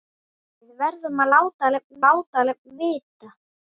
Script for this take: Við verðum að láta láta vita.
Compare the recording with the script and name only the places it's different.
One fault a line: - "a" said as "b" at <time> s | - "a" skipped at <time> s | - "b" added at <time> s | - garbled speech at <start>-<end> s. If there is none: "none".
none